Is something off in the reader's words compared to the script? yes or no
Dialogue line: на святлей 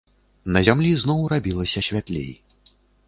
yes